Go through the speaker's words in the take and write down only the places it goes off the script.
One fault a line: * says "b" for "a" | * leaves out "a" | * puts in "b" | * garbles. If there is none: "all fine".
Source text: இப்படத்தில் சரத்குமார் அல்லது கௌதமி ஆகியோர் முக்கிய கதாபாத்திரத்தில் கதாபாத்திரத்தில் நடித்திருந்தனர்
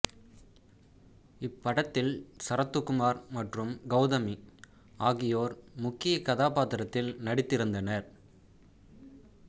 * says "மற்றும்" for "அல்லது"
* leaves out "கதாபாத்திரத்தில்"